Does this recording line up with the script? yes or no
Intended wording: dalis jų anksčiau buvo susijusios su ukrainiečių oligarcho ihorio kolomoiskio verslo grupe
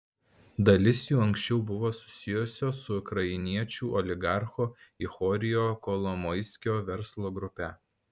yes